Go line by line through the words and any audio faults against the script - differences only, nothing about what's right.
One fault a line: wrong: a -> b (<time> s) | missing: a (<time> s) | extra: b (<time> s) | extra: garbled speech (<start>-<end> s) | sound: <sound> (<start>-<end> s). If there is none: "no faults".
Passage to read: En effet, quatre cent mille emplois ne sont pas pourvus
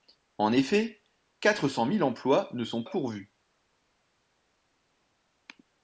missing: pas (2.8 s)